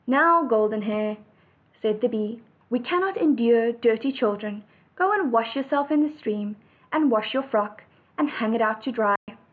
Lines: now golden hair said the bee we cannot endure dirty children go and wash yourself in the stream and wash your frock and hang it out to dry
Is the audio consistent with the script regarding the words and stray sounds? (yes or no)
no